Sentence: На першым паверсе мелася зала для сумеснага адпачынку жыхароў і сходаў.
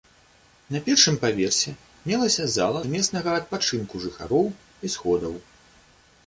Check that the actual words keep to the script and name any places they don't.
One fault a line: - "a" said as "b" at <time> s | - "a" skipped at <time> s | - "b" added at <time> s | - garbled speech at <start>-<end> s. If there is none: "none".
- "для" skipped at 2.8 s